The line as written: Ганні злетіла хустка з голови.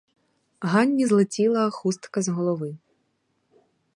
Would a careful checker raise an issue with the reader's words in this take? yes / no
no